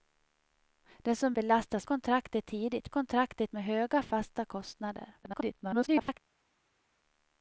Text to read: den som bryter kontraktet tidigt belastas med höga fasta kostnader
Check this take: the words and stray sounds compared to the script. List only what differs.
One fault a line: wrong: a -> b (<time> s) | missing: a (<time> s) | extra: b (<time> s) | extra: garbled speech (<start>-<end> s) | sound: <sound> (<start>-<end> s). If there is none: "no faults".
wrong: bryter -> belastas (1.3 s)
wrong: belastas -> kontraktet (2.9 s)
extra: garbled speech (5.2-6.2 s)